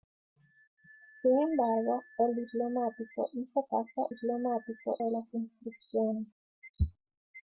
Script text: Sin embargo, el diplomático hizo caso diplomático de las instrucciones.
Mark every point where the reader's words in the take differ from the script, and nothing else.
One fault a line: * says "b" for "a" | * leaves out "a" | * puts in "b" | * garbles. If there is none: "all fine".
all fine